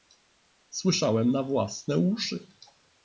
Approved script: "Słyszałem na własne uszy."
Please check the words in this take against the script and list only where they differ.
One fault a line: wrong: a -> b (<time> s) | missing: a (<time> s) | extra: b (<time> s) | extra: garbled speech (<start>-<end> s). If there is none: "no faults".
no faults